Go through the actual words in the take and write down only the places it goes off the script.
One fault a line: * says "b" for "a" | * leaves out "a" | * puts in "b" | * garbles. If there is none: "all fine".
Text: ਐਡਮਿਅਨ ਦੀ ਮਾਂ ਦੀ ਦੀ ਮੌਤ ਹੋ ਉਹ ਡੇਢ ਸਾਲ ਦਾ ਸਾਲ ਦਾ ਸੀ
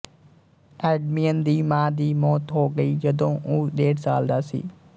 * leaves out "ਦੀ"
* puts in "ਗਈ ਜਦੋਂ"
* leaves out "ਸਾਲ ਦਾ"